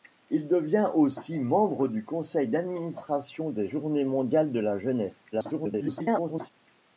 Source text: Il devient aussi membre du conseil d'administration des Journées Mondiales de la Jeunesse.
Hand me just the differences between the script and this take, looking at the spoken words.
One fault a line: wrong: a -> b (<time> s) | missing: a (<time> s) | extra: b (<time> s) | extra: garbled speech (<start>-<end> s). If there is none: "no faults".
extra: garbled speech (5.3-6.5 s)